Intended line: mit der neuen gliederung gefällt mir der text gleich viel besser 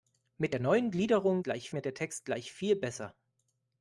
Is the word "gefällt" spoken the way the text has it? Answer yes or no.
no